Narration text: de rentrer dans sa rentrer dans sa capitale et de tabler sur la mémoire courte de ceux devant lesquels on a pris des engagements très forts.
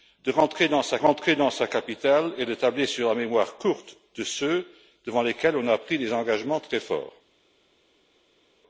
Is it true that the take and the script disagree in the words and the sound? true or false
false